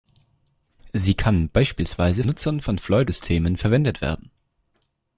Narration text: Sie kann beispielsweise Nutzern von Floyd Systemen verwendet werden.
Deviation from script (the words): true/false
false